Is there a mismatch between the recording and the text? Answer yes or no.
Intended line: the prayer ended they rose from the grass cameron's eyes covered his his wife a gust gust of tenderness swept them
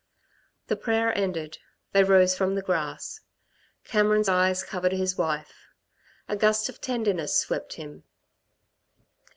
yes